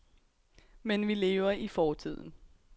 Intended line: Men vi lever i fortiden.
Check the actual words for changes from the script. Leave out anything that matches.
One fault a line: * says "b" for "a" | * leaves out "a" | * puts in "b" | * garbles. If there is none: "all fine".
all fine